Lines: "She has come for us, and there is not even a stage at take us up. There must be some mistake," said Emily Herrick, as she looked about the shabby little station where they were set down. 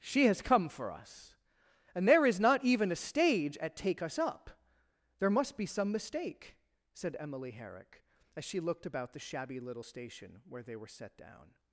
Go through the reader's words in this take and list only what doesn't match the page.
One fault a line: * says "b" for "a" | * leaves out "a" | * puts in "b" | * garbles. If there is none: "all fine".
all fine